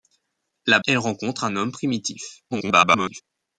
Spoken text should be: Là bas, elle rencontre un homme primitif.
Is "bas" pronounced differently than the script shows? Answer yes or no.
yes